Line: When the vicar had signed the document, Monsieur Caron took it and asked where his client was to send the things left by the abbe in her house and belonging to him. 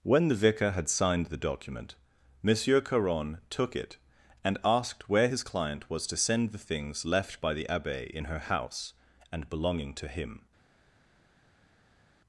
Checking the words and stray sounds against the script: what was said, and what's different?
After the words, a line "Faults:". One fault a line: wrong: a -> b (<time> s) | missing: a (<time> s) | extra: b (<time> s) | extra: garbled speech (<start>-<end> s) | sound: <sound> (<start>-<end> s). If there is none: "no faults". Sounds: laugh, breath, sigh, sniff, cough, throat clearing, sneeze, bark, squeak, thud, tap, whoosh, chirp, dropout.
When the vicar had signed the document, Monsieur Caron took it and asked where his client was to send the things left by the abbe in her house and belonging to him.
Faults:
no faults